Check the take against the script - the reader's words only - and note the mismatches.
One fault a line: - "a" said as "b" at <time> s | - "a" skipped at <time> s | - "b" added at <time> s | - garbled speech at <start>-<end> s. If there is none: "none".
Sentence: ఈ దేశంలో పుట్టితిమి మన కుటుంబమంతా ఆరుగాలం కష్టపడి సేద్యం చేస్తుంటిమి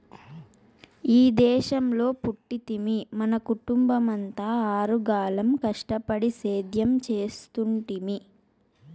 none